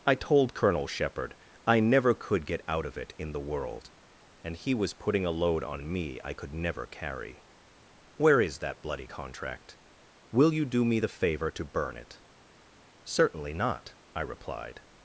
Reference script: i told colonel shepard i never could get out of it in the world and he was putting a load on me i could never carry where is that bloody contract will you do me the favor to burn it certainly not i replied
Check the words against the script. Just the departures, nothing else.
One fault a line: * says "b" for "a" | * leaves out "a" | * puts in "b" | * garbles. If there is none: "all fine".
all fine